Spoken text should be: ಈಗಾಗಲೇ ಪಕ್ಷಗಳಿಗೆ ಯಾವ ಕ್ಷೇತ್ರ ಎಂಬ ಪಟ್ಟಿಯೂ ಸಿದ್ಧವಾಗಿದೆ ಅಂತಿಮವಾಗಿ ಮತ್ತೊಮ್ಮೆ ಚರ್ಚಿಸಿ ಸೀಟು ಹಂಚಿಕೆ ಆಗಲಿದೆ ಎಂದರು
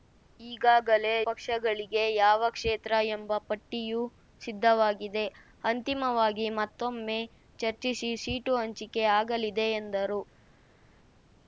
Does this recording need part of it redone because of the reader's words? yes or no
no